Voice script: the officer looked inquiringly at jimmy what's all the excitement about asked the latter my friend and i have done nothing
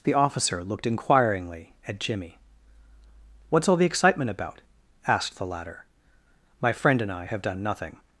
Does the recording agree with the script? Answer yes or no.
yes